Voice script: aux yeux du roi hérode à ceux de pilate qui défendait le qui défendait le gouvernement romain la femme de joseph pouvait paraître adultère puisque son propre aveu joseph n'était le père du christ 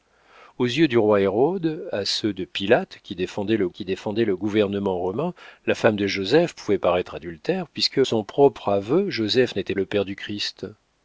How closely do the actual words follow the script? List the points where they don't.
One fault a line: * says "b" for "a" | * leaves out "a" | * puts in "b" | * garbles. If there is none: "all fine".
all fine